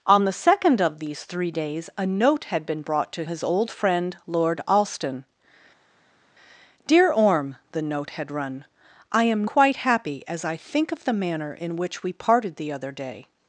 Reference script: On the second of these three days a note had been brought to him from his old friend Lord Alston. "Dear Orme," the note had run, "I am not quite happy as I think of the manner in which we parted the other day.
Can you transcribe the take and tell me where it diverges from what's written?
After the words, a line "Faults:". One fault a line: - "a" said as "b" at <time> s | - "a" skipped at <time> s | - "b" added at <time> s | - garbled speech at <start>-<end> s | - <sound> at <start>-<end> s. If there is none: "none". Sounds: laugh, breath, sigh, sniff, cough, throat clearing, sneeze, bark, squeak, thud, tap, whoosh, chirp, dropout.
On the second of these three days a note had been brought to his old friend Lord Alston. "Dear Orme," the note had run, "I am quite happy as I think of the manner in which we parted the other day.
Faults:
- "him from" skipped at 3.2 s
- "not" skipped at 9.5 s